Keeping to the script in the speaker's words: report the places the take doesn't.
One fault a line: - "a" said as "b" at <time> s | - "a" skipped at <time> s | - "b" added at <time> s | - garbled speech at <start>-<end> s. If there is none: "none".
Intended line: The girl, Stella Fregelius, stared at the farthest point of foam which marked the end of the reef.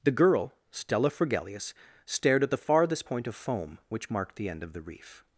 none